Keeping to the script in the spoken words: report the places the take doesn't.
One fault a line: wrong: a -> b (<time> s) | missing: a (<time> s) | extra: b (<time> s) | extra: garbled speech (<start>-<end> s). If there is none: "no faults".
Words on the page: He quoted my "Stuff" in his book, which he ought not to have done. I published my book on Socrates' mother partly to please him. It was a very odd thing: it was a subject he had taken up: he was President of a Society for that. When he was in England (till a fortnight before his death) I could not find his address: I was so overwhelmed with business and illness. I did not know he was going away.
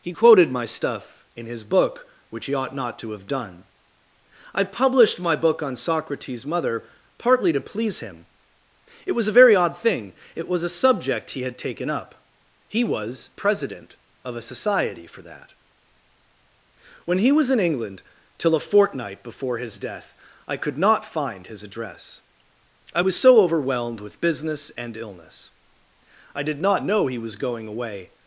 no faults